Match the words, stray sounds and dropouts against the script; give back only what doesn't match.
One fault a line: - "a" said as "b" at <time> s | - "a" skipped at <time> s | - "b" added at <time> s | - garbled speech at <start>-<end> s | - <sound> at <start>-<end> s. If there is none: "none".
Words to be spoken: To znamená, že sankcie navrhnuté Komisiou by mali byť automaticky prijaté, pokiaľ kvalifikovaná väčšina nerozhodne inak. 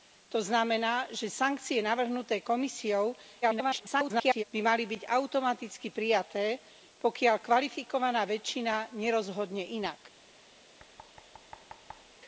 - garbled speech at 3.4-4.4 s
- thud at 10.8-12.2 s